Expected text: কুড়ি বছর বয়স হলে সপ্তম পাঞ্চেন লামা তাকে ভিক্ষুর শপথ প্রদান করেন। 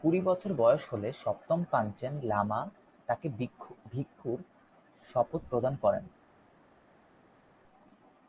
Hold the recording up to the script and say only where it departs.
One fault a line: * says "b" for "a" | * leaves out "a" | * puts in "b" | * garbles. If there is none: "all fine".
all fine